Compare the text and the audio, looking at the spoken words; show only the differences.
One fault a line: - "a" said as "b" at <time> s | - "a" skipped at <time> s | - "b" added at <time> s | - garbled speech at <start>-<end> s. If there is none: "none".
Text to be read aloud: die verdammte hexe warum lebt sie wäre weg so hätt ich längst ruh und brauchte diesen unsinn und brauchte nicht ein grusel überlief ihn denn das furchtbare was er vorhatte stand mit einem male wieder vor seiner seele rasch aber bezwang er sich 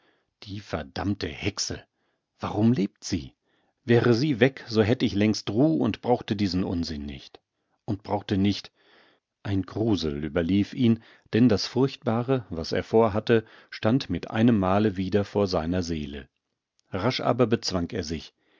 - "sie" added at 4.1 s
- "nicht" added at 7.1 s